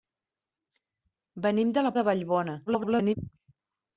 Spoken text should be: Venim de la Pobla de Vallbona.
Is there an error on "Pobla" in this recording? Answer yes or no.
yes